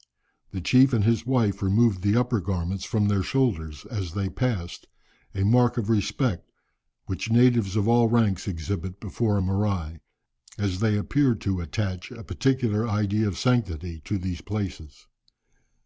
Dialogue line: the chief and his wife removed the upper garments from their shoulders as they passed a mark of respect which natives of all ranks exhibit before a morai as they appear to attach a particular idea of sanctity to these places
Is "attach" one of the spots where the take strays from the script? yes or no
no